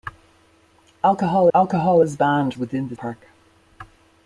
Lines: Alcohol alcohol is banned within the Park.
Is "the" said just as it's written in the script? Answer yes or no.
yes